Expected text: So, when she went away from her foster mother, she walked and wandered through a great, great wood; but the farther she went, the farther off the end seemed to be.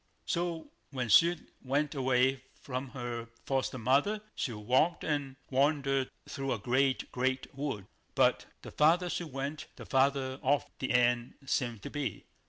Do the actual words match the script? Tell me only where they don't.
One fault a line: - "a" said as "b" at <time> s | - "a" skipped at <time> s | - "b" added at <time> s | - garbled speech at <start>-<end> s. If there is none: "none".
none